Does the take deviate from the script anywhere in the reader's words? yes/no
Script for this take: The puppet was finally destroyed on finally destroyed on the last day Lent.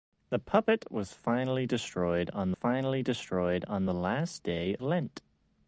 no